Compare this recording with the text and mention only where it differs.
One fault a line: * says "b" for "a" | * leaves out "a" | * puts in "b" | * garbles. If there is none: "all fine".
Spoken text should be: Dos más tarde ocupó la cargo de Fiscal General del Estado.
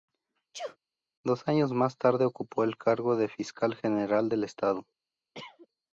* puts in "años"
* says "el" for "la"